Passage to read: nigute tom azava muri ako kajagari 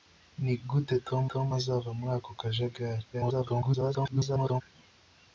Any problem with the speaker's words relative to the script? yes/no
yes